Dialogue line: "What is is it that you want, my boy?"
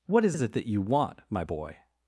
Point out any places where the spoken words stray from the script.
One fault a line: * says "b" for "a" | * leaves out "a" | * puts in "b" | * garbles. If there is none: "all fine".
all fine